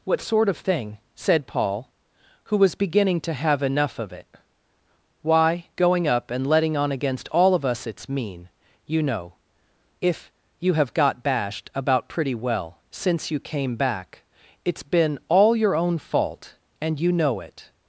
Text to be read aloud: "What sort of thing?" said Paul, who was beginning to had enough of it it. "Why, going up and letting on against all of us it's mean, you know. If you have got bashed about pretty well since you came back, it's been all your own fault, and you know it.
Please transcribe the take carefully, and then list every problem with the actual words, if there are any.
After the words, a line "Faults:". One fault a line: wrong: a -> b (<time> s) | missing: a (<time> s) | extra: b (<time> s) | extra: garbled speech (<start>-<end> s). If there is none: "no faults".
"What sort of thing?" said Paul, who was beginning to have enough of it. "Why, going up and letting on against all of us it's mean, you know. If you have got bashed about pretty well since you came back, it's been all your own fault, and you know it.
Faults:
wrong: had -> have (3.4 s)
missing: it (4.3 s)